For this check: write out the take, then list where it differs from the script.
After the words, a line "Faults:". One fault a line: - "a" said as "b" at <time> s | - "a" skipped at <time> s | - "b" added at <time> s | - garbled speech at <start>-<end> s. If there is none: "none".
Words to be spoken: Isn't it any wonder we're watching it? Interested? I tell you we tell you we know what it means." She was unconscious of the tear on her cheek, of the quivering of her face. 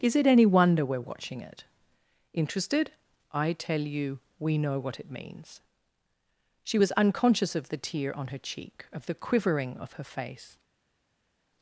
Is it any wonder we're watching it? Interested? I tell you we know what it means." She was unconscious of the tear on her cheek, of the quivering of her face.
Faults:
- "Isn't" said as "Is" at 0.0 s
- "tell you we" skipped at 4.6 s